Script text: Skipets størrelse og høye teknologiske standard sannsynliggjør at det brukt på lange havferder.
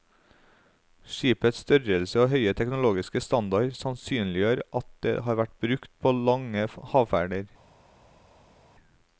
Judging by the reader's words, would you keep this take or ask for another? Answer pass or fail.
fail